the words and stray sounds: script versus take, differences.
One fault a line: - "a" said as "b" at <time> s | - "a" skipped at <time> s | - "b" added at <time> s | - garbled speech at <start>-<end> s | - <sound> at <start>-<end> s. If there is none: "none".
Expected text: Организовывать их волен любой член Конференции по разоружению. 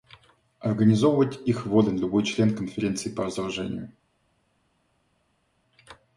none